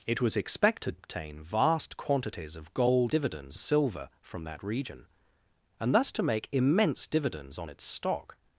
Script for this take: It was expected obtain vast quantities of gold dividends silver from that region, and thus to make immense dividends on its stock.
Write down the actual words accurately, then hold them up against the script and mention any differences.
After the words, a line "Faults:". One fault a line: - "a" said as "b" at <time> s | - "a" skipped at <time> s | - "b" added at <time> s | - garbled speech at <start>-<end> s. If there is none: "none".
It was expected obtain vast quantities of gold dividends silver from that region, and thus to make immense dividends on its stock.
Faults:
none